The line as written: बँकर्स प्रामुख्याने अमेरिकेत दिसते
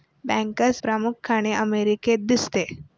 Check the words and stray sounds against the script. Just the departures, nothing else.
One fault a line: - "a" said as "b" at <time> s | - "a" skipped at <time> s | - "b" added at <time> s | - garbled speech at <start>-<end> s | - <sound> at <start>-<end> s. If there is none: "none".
none